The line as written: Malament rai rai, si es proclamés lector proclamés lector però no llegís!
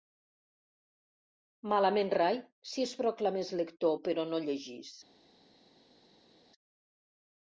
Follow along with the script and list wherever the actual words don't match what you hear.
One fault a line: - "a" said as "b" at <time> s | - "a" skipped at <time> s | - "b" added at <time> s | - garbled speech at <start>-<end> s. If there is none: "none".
- "rai" skipped at 2.4 s
- "proclamés lector" skipped at 4.0 s